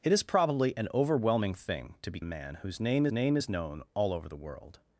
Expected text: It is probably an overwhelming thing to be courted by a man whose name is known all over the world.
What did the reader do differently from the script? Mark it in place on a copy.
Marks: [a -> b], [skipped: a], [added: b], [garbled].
It is probably an overwhelming thing to be [skipped: courted by] a man whose name [added: name] is known all over the world.